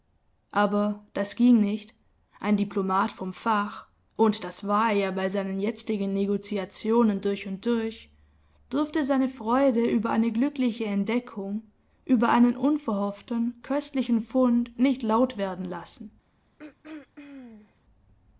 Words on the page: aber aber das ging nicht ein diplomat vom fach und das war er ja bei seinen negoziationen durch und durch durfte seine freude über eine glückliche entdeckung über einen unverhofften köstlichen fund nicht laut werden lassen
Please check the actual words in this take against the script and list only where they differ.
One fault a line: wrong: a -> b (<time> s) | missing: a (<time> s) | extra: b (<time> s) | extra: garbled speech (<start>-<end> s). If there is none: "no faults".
missing: aber (1.1 s)
extra: jetzigen (5.6 s)